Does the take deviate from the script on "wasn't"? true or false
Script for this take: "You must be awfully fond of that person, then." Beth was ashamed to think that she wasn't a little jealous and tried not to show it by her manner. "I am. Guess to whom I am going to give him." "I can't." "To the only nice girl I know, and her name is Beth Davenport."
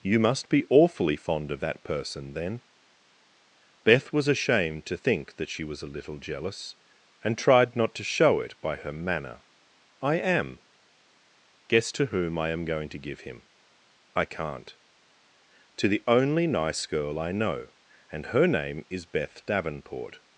true